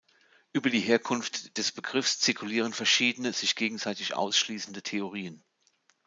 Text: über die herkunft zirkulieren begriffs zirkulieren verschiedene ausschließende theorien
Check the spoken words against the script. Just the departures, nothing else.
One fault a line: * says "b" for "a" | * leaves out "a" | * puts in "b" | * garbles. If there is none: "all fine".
* says "des" for "zirkulieren"
* puts in "sich gegenseitig"